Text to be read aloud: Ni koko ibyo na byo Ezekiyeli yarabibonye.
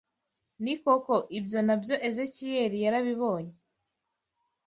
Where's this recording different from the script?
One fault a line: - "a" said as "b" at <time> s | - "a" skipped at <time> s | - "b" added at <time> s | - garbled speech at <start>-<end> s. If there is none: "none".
none